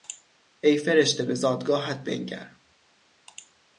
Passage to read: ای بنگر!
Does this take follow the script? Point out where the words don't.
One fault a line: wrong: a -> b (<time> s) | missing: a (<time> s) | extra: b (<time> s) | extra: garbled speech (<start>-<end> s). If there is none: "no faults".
extra: فرشته به زادگاهت (0.8 s)